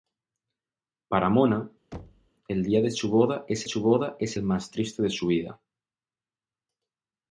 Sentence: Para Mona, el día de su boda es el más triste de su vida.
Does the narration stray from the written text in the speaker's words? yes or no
yes